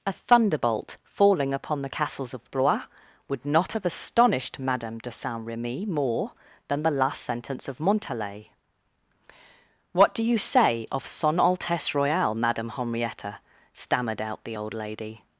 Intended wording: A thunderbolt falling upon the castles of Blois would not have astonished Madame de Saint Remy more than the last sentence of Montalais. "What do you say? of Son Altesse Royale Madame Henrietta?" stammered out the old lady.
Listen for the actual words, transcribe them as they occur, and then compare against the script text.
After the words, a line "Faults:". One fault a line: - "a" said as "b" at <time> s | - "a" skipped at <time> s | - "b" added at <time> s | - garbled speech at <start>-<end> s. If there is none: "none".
A thunderbolt falling upon the castles of Blois would not have astonished Madame de Saint Remy more than the last sentence of Montalais. "What do you say? of Son Altesse Royale Madame Henrietta?" stammered out the old lady.
Faults:
none